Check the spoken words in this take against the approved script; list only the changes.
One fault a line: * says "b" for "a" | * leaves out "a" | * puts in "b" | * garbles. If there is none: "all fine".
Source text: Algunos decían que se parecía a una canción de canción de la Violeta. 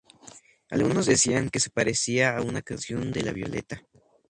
* leaves out "canción de"